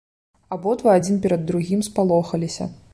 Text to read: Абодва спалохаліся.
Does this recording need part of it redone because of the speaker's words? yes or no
yes